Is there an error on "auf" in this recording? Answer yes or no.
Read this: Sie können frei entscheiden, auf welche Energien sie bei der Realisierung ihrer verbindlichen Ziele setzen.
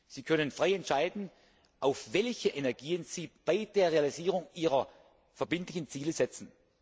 no